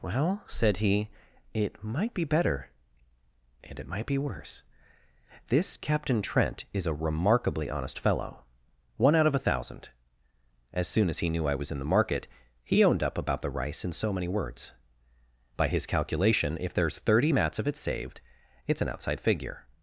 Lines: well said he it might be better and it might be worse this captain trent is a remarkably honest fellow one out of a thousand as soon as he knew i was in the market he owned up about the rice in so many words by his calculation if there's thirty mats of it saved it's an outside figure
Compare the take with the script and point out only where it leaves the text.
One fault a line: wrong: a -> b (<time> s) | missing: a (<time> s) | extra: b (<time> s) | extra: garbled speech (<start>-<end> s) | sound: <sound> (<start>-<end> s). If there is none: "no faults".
no faults